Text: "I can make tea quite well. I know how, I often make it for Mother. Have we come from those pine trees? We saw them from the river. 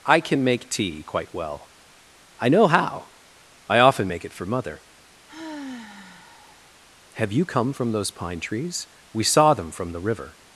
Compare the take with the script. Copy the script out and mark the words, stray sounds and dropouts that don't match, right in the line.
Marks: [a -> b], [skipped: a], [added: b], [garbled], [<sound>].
"I can make tea quite well. I know how, I often make it for Mother. [sigh] Have [we -> you] come from those pine trees? We saw them from the river.